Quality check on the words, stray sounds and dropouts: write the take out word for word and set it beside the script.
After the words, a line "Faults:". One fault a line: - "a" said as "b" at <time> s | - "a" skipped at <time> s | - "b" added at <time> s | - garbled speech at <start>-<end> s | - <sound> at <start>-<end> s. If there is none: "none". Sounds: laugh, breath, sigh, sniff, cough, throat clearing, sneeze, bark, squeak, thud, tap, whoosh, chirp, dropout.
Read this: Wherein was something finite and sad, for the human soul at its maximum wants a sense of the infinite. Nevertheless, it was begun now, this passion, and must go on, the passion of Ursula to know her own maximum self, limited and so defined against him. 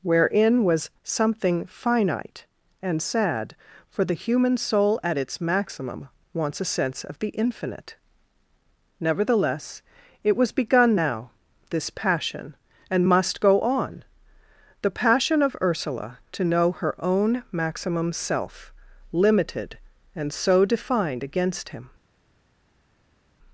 Wherein was something finite and sad, for the human soul at its maximum wants a sense of the infinite. Nevertheless, it was begun now, this passion, and must go on, the passion of Ursula to know her own maximum self, limited and so defined against him.
Faults:
none